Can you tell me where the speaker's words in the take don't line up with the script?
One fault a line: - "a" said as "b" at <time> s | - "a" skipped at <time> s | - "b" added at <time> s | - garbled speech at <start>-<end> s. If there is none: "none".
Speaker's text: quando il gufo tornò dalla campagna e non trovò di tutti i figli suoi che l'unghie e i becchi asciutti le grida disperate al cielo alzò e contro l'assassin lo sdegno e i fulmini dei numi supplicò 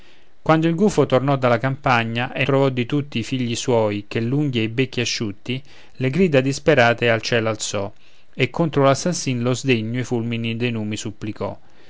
- "non" skipped at 2.4 s